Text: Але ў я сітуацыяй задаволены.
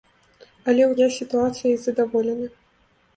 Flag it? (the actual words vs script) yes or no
no